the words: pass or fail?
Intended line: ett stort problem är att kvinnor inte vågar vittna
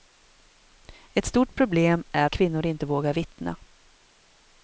fail